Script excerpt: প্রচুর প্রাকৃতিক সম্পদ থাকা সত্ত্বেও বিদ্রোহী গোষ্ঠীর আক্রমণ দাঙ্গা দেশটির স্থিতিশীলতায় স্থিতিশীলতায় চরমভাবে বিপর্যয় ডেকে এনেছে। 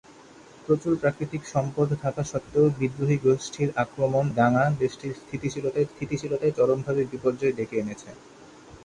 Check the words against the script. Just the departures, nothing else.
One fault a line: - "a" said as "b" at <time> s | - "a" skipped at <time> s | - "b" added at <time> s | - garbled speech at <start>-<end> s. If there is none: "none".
none